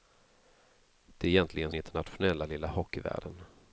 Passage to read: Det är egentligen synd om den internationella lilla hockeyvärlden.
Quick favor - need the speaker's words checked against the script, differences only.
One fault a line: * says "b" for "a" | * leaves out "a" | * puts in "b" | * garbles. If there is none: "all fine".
* leaves out "synd om den"